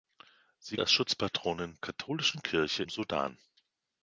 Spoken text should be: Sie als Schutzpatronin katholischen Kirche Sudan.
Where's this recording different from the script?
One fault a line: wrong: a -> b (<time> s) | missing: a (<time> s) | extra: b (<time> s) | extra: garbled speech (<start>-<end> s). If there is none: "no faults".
no faults